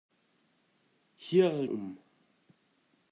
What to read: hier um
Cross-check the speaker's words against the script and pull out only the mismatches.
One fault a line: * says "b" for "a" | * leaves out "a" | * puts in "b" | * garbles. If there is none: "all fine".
all fine